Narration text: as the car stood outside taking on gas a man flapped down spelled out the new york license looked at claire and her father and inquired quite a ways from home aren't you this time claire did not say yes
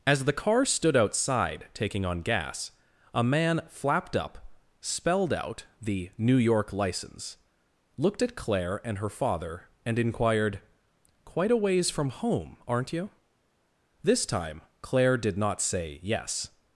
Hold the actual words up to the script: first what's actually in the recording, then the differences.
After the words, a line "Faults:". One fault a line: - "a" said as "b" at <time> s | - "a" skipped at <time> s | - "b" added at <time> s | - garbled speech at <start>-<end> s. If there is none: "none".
as the car stood outside taking on gas a man flapped up spelled out the new york license looked at claire and her father and inquired quite a ways from home aren't you this time claire did not say yes
Faults:
- "down" said as "up" at 4.2 s